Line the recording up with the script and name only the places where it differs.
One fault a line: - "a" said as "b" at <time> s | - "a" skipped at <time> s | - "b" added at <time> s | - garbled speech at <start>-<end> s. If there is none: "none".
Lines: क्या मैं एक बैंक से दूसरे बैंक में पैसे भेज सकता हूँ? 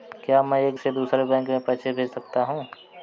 - "बैंक" skipped at 0.8 s